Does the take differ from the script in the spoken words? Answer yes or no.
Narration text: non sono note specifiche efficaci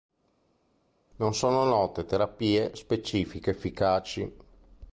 yes